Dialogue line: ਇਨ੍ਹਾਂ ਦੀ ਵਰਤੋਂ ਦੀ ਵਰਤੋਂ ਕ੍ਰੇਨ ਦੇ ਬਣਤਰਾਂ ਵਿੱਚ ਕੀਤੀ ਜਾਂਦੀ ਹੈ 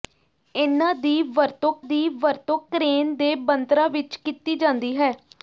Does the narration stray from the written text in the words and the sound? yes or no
no